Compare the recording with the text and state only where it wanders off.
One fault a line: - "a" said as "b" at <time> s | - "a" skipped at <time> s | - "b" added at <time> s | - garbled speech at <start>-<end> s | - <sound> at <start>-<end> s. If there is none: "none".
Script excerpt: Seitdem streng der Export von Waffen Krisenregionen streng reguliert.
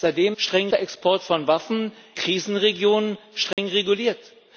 - dropout at 3.5-3.6 s